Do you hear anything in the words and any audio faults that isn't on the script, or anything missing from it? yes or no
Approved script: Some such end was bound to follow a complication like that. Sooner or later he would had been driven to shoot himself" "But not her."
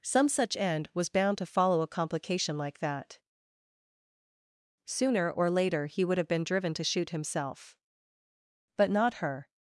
yes